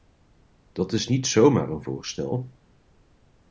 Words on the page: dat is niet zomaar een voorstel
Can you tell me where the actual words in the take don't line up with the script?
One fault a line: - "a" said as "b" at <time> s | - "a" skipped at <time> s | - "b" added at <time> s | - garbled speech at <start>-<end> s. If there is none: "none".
none